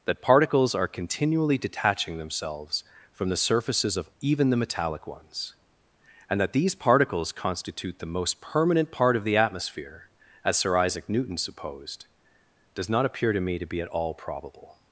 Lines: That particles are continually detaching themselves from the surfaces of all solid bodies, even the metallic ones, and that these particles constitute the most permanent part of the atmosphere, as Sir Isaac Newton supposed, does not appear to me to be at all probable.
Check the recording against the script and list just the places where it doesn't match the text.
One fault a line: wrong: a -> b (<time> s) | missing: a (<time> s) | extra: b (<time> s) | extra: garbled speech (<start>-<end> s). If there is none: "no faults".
missing: all solid bodies (4.1 s)